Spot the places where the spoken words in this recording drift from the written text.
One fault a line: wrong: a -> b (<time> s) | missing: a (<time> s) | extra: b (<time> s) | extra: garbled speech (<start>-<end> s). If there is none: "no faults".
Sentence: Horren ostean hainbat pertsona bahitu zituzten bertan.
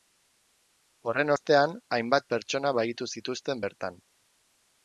no faults